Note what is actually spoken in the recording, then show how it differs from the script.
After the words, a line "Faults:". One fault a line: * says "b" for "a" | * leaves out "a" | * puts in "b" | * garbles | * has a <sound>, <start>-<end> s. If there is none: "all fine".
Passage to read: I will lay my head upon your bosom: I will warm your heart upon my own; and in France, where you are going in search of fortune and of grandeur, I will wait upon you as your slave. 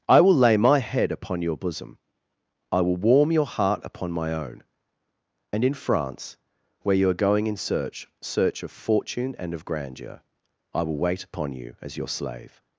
I will lay my head upon your bosom: I will warm your heart upon my own; and in France, where you are going in search search of fortune and of grandeur, I will wait upon you as your slave.
Faults:
* puts in "search"